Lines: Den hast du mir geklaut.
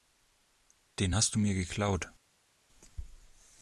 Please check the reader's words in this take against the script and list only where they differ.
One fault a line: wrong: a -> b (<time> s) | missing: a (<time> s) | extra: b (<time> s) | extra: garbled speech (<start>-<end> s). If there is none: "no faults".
no faults